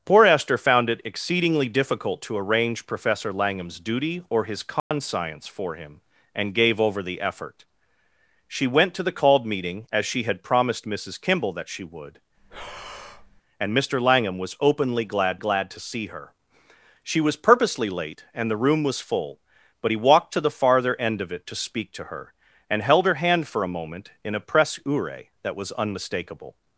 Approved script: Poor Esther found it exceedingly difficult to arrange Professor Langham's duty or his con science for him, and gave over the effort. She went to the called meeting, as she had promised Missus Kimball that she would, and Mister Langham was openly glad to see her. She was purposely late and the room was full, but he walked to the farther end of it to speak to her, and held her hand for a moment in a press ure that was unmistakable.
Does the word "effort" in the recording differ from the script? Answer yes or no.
no